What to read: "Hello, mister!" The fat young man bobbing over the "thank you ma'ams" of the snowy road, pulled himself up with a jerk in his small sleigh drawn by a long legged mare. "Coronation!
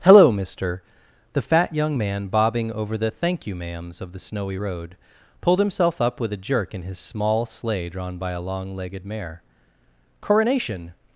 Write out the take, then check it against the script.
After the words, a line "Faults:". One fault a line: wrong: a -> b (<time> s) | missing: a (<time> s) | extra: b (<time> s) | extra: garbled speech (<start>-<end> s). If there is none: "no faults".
"Hello, mister!" The fat young man bobbing over the "thank you ma'ams" of the snowy road, pulled himself up with a jerk in his small sleigh drawn by a long legged mare. "Coronation!
Faults:
no faults